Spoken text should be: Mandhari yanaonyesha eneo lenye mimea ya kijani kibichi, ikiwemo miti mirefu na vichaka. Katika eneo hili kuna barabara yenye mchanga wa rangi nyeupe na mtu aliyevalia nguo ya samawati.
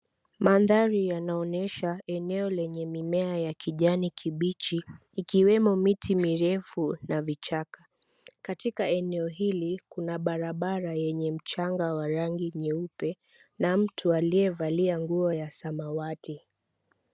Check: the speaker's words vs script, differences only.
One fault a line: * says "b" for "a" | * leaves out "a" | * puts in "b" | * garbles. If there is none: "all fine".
all fine